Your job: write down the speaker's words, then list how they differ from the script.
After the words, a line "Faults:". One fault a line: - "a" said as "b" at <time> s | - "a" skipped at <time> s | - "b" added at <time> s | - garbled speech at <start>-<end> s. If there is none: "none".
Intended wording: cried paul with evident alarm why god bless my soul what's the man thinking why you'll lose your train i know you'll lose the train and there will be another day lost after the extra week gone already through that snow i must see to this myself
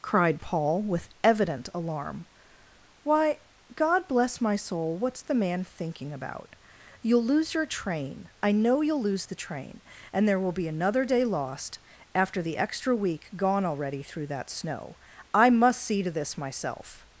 cried paul with evident alarm why god bless my soul what's the man thinking about you'll lose your train i know you'll lose the train and there will be another day lost after the extra week gone already through that snow i must see to this myself
Faults:
- "why" said as "about" at 6.1 s